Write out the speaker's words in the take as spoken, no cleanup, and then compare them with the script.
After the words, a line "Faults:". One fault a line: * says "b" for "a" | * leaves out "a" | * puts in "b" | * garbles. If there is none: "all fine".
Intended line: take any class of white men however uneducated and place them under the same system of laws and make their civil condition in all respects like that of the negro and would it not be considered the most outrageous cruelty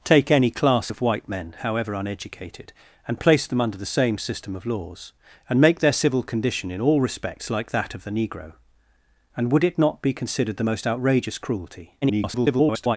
take any class of white men however uneducated and place them under the same system of laws and make their civil condition in all respects like that of the negro and would it not be considered the most outrageous cruelty [garbled]
Faults:
* garbles